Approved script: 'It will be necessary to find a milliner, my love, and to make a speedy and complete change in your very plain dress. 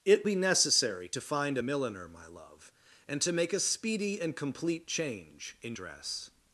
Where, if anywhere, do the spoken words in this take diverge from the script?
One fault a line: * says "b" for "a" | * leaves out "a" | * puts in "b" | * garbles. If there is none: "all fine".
* leaves out "will"
* leaves out "your very plain"